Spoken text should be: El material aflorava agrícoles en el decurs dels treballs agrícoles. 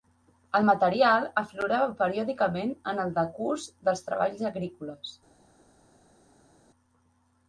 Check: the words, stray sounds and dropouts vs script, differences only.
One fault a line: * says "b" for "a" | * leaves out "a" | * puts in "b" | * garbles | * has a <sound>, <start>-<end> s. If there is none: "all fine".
* says "periòdicament" for "agrícoles"